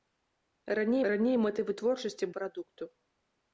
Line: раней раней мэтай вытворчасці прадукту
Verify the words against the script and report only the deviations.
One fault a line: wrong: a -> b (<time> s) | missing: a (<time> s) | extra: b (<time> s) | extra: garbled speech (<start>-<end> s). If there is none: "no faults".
no faults